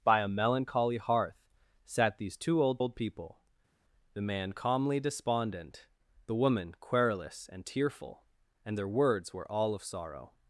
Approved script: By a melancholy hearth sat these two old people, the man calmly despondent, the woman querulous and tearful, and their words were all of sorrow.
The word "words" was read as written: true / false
true